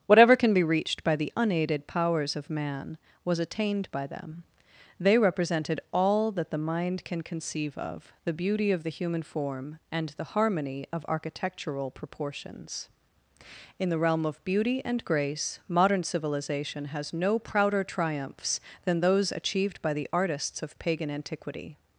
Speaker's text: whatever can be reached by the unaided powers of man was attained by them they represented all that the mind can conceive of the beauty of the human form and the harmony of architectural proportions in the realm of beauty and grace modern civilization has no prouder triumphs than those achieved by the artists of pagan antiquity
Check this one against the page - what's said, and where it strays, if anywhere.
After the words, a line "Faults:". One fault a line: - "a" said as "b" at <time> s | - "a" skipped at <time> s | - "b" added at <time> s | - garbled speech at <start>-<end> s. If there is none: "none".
whatever can be reached by the unaided powers of man was attained by them they represented all that the mind can conceive of the beauty of the human form and the harmony of architectural proportions in the realm of beauty and grace modern civilization has no prouder triumphs than those achieved by the artists of pagan antiquity
Faults:
none